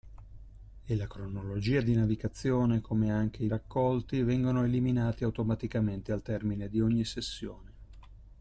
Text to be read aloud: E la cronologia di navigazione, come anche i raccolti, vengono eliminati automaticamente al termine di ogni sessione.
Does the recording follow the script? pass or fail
pass